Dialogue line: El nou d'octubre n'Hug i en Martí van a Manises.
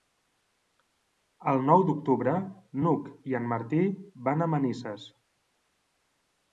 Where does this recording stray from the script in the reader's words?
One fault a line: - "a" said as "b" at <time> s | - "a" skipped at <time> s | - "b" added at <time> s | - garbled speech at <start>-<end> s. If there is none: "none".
none